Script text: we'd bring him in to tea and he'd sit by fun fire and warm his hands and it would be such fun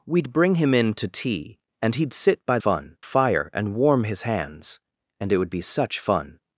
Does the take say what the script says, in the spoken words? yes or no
yes